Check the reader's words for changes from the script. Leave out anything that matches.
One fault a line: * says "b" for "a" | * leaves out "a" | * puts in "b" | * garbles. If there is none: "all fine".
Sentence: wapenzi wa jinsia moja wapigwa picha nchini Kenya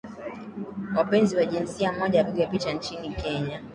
all fine